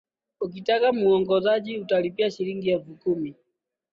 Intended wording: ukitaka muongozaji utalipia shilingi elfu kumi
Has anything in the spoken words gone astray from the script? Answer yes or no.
no